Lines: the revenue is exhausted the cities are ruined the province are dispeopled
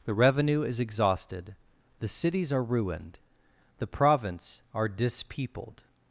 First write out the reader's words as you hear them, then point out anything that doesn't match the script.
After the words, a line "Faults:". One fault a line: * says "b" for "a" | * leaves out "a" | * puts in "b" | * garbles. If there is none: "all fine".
the revenue is exhausted the cities are ruined the province are dispeopled
Faults:
all fine